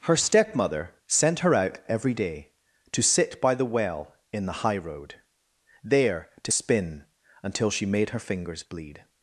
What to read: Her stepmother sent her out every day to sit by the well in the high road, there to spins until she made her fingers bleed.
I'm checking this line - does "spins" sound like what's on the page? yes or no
no